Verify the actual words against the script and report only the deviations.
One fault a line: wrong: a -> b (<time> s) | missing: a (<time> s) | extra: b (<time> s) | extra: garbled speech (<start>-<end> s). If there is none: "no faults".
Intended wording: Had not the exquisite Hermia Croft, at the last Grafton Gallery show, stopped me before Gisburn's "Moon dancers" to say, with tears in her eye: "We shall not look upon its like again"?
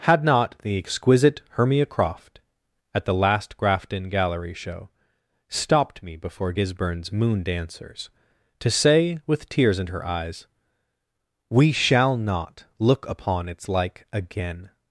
wrong: eye -> eyes (10.0 s)